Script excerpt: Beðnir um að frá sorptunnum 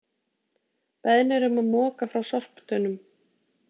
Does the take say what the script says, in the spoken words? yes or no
no